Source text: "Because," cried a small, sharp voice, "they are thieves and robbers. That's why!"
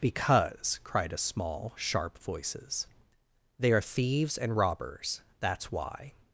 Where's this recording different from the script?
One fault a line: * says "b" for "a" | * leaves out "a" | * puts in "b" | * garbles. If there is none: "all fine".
* says "voices" for "voice"